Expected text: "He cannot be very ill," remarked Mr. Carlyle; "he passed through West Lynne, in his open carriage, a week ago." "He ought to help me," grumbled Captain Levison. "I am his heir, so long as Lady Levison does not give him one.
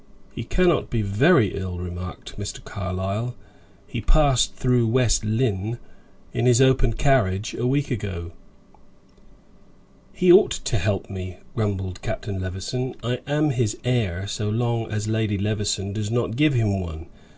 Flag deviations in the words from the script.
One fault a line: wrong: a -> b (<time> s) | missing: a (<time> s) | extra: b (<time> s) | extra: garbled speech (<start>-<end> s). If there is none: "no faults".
no faults